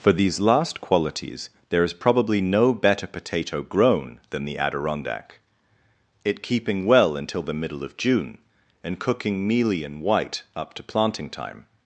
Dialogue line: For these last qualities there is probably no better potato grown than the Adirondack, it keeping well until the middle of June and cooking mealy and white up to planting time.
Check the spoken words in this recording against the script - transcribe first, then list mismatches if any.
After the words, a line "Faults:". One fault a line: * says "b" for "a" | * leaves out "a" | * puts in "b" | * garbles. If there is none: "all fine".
For these last qualities there is probably no better potato grown than the Adirondack, it keeping well until the middle of June and cooking mealy and white up to planting time.
Faults:
all fine